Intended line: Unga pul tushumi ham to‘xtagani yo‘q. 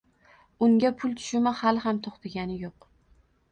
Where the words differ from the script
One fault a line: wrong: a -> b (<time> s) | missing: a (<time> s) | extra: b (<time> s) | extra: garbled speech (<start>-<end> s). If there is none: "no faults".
extra: hali (1.6 s)